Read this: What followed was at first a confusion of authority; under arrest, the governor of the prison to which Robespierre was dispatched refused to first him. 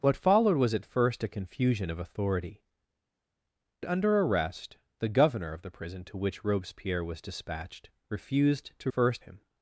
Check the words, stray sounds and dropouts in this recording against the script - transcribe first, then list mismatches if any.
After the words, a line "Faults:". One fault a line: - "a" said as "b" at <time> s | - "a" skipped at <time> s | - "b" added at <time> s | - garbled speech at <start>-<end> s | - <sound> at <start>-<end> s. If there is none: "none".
What followed was at first a confusion of authority; under arrest, the governor of the prison to which Robespierre was dispatched refused to first him.
Faults:
none